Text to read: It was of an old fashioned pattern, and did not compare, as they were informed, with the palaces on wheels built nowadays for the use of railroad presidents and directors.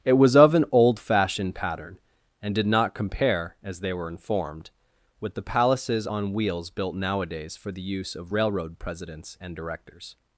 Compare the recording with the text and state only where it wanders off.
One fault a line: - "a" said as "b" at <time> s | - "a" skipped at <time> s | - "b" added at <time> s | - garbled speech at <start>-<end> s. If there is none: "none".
none